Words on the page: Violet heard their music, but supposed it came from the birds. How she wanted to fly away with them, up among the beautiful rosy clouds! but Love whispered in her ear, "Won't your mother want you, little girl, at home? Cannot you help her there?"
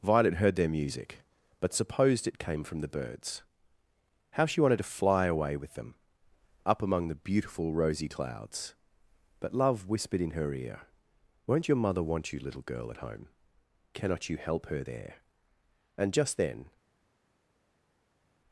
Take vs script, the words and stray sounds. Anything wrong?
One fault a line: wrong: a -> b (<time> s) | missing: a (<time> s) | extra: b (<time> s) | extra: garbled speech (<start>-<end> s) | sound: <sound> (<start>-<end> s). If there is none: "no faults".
extra: and just then (16.0 s)